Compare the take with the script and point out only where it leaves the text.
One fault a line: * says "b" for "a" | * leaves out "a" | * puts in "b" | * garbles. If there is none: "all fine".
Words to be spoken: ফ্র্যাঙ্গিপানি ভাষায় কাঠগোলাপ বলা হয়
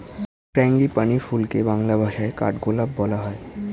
* puts in "ফুলকে বাংলা"